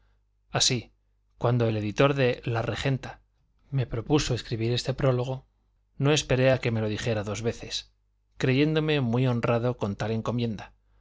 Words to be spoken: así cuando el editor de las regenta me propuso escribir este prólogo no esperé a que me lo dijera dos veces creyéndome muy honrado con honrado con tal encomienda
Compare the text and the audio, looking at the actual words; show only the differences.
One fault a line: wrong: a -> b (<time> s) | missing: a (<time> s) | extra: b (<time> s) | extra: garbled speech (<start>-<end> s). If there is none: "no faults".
wrong: las -> la (2.4 s)
missing: honrado con (10.0 s)